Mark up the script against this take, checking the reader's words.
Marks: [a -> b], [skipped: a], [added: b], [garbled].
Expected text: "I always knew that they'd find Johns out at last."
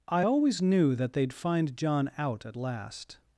"I always knew that they'd find [Johns -> John] out at last."